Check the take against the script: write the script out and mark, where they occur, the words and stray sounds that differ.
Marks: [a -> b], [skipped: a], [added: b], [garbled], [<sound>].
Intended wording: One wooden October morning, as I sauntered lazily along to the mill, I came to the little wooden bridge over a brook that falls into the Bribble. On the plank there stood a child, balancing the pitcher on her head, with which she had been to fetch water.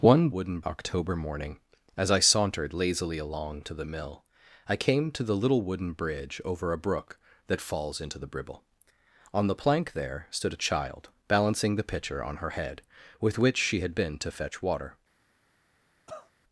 One wooden October morning, as I sauntered lazily along to the mill, I came to the little wooden bridge over a brook that falls into the Bribble. On the plank there stood a child, balancing the pitcher on her head, with which she had been to fetch water. [cough]